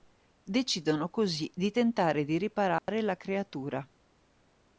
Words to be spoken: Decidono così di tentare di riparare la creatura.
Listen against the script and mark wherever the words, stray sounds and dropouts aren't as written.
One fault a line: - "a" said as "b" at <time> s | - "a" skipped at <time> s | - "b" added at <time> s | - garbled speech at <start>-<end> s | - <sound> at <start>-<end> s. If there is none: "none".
- dropout at 2.8-2.9 s